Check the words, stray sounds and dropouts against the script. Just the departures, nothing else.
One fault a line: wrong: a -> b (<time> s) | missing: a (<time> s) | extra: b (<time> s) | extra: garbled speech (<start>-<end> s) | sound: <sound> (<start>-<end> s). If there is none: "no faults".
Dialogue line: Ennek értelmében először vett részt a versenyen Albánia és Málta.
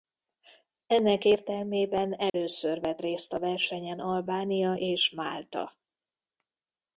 sound: dropout (2.3-2.3 s)